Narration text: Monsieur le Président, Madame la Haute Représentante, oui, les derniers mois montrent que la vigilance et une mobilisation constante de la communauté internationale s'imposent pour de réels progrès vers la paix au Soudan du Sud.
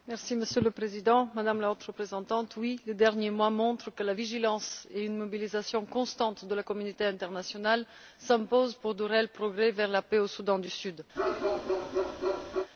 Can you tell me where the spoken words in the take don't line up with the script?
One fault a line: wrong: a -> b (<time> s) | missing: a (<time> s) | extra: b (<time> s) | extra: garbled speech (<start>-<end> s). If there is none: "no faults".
no faults